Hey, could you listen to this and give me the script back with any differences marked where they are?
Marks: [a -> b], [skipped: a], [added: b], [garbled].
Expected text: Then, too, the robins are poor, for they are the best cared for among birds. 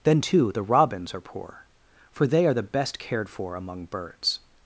Then, too, the robins are poor, for they are the best cared for among birds.